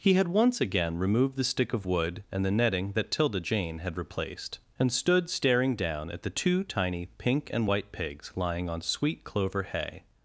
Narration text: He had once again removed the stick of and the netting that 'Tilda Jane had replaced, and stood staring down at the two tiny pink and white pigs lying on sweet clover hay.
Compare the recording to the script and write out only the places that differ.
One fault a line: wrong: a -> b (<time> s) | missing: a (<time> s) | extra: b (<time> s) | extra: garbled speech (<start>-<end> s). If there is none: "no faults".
extra: wood (1.8 s)